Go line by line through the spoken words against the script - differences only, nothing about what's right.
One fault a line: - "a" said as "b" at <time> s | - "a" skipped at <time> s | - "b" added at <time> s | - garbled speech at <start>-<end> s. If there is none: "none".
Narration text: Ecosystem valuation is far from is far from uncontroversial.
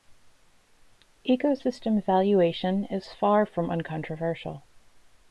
- "is far from" skipped at 3.7 s